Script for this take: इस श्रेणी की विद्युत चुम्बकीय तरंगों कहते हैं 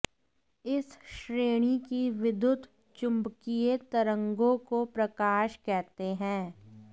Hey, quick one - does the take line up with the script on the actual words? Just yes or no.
no